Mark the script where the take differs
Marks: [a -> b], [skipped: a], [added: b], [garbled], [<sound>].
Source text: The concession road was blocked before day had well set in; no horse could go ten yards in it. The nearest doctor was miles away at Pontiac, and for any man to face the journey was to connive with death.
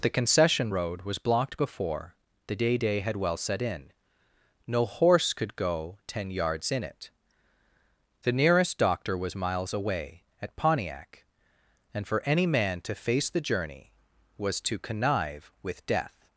The concession road was blocked before [added: the day] day had well set in; no horse could go ten yards in it. The nearest doctor was miles away at Pontiac, and for any man to face the journey was to connive with death.